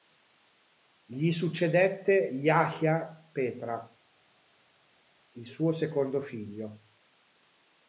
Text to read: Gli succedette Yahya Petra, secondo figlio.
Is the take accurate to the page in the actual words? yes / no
no